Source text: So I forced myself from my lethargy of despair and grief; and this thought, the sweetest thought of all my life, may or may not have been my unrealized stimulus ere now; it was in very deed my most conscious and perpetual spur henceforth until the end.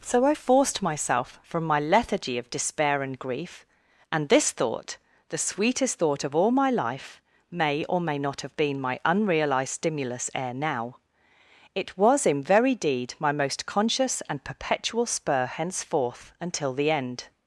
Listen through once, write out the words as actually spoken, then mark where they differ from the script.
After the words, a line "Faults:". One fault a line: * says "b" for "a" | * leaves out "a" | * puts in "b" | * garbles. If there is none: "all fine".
So I forced myself from my lethargy of despair and grief; and this thought, the sweetest thought of all my life, may or may not have been my unrealized stimulus ere now; it was in very deed my most conscious and perpetual spur henceforth until the end.
Faults:
all fine